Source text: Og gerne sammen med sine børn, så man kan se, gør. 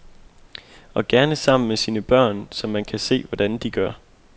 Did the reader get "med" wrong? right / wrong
right